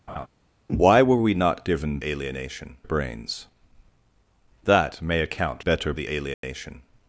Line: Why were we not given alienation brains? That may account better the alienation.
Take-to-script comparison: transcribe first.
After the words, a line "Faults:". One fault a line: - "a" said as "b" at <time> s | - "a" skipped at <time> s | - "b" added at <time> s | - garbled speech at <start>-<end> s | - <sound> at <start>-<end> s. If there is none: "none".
Why were we not given alienation brains? That may account better the alienation.
Faults:
- laugh at 0.1-0.3 s
- dropout at 6.3-6.4 s